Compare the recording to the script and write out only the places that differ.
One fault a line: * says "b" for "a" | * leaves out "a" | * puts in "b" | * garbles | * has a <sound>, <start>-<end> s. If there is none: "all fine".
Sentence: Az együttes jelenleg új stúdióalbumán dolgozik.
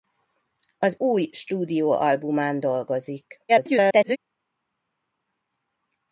* leaves out "együttes jelenleg"
* garbles